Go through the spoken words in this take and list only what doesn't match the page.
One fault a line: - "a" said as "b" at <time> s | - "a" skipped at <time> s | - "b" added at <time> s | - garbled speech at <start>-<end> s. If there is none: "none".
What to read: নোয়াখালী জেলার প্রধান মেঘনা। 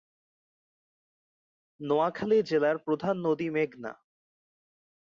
- "নদী" added at 3.3 s